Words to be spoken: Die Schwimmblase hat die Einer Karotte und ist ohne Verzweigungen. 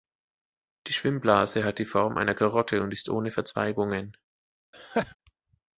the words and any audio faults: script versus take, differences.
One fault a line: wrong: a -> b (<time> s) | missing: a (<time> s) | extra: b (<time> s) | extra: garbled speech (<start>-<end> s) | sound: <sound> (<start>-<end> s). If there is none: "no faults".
extra: Form (1.8 s)
sound: laugh (4.7-5.2 s)